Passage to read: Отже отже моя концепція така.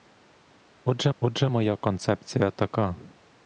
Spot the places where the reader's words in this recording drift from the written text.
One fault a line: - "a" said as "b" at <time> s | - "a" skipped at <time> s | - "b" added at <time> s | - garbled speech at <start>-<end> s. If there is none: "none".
none